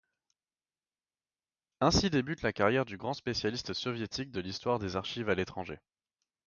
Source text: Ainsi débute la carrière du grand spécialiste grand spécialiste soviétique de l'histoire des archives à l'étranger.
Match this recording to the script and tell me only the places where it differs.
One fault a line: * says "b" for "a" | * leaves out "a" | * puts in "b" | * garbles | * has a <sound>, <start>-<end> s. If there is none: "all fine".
* leaves out "grand spécialiste"